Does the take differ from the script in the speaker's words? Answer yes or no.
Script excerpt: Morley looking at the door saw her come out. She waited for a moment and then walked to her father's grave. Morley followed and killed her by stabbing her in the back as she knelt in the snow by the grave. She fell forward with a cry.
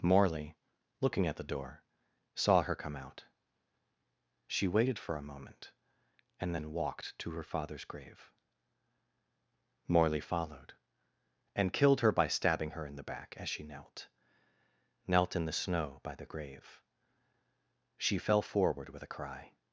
yes